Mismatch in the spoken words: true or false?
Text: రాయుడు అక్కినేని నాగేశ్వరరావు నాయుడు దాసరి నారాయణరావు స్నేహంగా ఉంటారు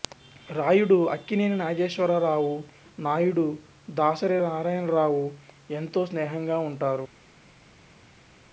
true